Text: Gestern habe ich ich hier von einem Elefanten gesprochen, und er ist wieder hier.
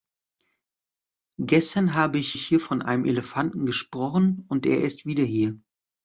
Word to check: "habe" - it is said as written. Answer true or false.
true